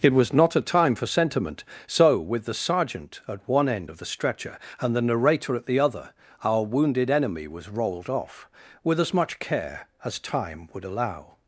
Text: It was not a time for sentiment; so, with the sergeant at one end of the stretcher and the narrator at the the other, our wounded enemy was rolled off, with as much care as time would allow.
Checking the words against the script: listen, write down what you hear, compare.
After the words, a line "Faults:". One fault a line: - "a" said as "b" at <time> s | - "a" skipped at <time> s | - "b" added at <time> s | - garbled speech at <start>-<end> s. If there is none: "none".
It was not a time for sentiment; so, with the sergeant at one end of the stretcher and the narrator at the other, our wounded enemy was rolled off, with as much care as time would allow.
Faults:
- "the" skipped at 5.8 s